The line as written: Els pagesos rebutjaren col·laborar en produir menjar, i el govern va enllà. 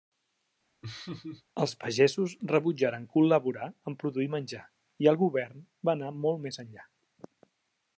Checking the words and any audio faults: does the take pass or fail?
fail